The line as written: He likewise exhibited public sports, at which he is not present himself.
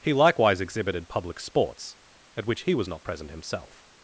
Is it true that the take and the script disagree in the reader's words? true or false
true